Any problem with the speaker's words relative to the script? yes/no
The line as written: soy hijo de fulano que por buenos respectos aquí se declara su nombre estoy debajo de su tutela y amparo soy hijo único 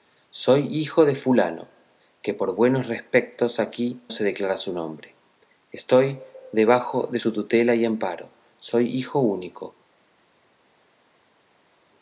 no